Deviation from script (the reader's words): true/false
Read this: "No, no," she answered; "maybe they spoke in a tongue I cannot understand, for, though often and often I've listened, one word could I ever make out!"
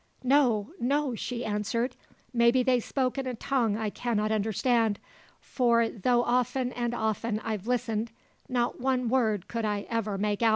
true